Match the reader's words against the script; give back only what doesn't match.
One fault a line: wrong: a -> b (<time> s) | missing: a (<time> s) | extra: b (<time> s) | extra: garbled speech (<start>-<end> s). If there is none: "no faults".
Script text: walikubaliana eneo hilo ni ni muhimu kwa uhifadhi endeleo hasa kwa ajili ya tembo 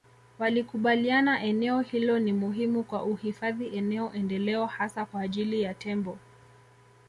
missing: ni (2.3 s)
extra: eneo (3.8 s)